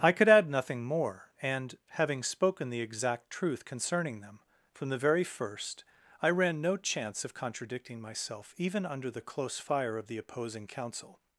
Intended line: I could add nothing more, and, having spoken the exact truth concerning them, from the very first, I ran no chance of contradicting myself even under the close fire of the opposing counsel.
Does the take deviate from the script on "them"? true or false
false